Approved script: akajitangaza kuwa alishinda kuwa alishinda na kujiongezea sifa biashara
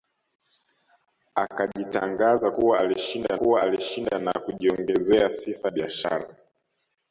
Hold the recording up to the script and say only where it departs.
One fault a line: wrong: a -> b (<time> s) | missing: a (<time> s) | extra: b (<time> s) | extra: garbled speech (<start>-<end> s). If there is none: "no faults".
no faults